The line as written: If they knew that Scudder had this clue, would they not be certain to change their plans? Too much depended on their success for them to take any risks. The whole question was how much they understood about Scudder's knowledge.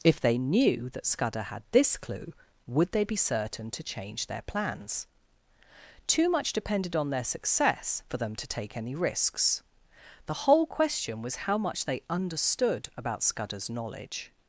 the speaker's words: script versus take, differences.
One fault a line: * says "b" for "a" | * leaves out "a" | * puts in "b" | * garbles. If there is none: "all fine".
* leaves out "not"